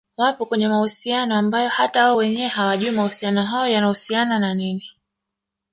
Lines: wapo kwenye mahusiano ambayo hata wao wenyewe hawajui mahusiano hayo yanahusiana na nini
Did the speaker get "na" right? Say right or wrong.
right